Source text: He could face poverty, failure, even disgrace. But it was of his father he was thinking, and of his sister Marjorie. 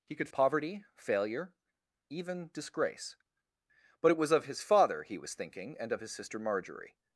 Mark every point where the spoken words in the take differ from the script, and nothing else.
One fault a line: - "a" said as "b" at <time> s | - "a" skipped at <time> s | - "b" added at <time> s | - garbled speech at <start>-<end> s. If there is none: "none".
- "face" skipped at 0.3 s